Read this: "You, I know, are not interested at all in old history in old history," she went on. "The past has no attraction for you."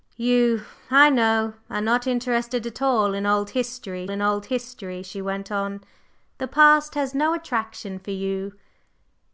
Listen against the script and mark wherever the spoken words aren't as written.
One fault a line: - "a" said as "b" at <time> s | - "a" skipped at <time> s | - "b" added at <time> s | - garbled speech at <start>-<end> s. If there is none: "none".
none